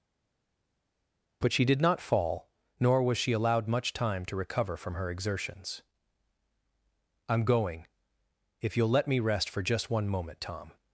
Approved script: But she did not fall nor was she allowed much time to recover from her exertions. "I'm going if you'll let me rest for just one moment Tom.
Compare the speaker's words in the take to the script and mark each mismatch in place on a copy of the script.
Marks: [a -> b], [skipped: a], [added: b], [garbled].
But she did not fall nor was she allowed much time to recover from her exertions. "I'm going if you'll let me rest for just one moment Tom.